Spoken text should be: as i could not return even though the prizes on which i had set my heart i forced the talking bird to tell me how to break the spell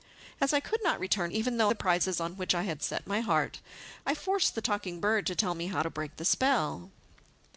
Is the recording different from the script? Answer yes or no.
no